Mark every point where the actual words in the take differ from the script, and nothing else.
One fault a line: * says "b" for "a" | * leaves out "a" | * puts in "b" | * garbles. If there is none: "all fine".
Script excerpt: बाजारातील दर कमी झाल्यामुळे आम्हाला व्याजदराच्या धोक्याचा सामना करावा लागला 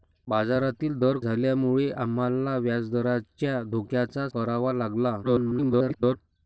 * leaves out "कमी"
* leaves out "सामना"
* garbles